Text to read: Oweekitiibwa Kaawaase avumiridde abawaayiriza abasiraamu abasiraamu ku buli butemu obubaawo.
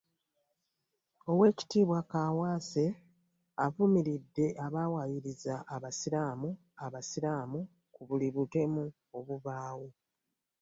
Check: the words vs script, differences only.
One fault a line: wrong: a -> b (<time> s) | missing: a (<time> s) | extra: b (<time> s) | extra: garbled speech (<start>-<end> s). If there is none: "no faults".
no faults